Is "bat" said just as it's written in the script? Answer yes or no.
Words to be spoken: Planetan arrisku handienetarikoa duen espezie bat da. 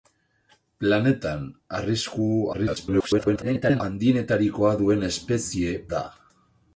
no